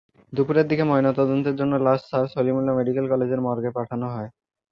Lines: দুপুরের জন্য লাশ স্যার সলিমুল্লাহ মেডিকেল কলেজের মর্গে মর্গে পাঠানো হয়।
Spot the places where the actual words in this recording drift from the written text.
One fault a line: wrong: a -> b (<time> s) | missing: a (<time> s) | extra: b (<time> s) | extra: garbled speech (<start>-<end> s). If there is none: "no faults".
extra: দিকে ময়নাতদন্তের (0.7 s)
missing: মর্গে (3.7 s)